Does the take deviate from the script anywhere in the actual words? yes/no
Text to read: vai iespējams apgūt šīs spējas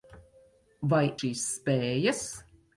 yes